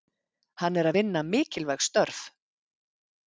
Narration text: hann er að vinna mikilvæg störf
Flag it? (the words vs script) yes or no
no